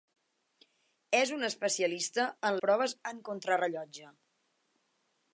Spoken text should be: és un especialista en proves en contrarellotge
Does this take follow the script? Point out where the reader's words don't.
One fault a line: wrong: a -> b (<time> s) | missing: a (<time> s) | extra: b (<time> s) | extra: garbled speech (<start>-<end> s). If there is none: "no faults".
no faults